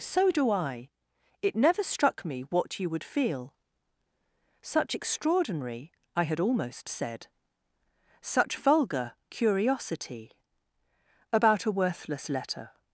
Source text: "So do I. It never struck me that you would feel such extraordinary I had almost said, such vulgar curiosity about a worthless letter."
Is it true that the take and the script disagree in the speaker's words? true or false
true